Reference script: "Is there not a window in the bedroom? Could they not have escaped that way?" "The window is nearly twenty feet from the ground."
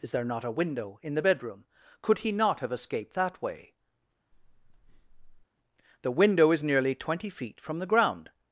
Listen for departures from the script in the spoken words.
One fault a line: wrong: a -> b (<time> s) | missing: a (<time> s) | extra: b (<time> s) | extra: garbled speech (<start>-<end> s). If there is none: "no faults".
wrong: they -> he (2.2 s)